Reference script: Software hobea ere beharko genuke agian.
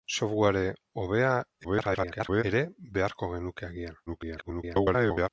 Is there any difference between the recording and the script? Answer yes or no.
yes